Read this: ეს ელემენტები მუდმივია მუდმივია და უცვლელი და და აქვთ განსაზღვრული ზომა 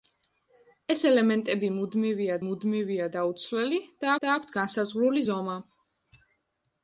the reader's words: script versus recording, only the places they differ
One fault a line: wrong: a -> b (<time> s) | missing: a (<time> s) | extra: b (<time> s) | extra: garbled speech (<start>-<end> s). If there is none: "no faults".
no faults